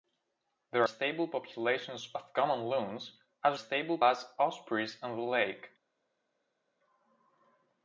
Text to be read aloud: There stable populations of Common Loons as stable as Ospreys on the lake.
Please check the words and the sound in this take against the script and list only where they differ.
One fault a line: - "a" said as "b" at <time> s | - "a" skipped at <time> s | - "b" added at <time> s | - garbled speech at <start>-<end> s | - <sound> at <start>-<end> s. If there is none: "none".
none